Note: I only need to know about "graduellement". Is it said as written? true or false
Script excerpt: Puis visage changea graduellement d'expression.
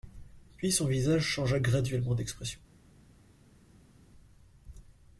true